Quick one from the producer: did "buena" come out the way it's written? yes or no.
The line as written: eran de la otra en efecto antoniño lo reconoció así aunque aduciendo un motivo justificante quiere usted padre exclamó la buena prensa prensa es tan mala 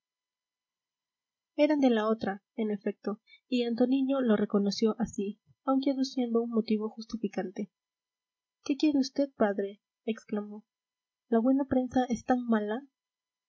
yes